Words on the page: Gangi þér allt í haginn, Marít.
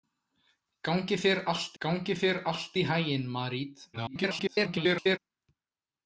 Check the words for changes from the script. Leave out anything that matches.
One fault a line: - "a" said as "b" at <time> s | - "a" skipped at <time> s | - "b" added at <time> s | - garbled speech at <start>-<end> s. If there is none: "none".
- "gangi þér allt" added at 1.8 s
- garbled speech at 3.9-5.2 s